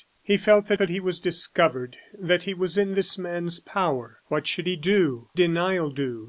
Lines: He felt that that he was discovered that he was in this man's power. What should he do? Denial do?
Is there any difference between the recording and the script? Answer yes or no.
no